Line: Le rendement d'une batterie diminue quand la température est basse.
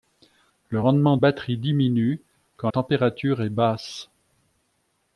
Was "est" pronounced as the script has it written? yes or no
yes